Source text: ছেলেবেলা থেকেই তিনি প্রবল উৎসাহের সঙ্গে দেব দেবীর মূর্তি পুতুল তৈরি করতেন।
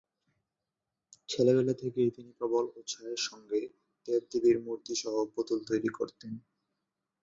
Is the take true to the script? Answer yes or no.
no